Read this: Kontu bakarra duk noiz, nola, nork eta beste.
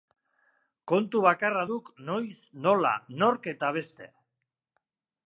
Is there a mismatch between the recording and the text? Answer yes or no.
no